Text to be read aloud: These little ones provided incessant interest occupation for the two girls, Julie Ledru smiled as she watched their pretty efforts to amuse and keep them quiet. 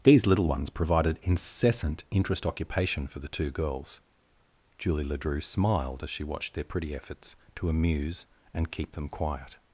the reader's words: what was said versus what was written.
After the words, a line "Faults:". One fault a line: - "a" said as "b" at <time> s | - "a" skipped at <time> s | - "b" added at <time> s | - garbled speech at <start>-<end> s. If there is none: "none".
These little ones provided incessant interest occupation for the two girls, Julie Ledru smiled as she watched their pretty efforts to amuse and keep them quiet.
Faults:
none